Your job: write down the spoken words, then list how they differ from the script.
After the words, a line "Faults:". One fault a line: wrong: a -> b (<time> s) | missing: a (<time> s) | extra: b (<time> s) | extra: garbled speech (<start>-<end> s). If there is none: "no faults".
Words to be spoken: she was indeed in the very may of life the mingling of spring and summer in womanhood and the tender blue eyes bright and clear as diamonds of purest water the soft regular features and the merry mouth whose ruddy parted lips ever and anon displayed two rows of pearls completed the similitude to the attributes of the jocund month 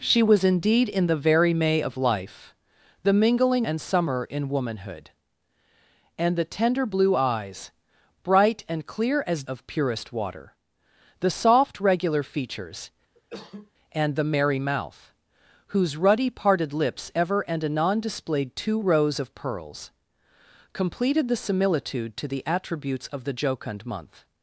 she was indeed in the very may of life the mingling and summer in womanhood and the tender blue eyes bright and clear as of purest water the soft regular features and the merry mouth whose ruddy parted lips ever and anon displayed two rows of pearls completed the similitude to the attributes of the jocund month
Faults:
missing: of spring (3.7 s)
missing: diamonds (9.4 s)